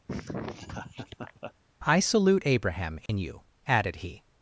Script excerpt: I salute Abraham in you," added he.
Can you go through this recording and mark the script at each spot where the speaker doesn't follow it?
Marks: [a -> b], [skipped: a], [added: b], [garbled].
I salute Abraham in you," added he.